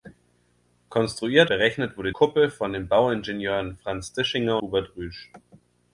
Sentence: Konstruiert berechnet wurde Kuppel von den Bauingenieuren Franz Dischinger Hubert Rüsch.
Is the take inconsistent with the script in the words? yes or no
no